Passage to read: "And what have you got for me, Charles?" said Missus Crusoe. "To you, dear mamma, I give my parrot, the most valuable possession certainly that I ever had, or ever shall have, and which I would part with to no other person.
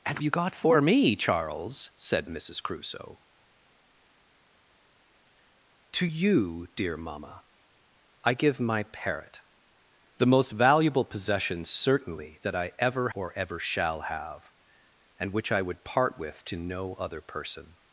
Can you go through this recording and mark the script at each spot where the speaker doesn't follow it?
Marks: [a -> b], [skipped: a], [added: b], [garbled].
"And [skipped: what have] you got for me, Charles?" said Missus Crusoe. "To you, dear mamma, I give my parrot, the most valuable possession certainly that I ever [skipped: had,] or ever shall have, and which I would part with to no other person.